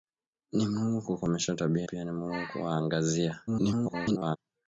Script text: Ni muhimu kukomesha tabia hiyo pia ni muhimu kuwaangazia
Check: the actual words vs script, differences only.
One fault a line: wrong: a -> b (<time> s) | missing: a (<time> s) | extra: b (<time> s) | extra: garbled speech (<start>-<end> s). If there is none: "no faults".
missing: hiyo (1.9 s)
extra: garbled speech (3.5-4.4 s)